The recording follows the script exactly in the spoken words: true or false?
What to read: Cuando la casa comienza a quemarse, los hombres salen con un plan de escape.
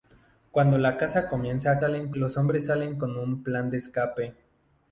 false